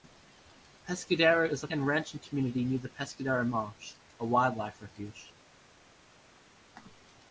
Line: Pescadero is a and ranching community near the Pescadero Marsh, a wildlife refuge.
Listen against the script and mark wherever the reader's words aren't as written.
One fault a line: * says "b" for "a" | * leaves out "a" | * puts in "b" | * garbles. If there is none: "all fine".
all fine